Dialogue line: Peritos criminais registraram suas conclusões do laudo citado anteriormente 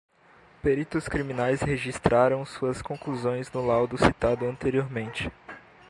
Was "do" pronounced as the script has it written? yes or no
no